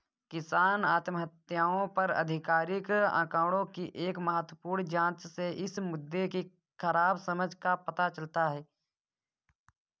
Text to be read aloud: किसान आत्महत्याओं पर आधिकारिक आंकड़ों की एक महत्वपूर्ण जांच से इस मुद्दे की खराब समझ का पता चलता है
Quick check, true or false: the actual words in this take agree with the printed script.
true